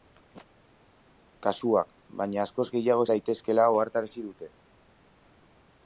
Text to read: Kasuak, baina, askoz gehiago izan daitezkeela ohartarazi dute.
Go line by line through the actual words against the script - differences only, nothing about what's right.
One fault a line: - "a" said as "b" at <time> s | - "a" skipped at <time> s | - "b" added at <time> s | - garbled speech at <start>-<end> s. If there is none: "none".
- "izan" skipped at 3.0 s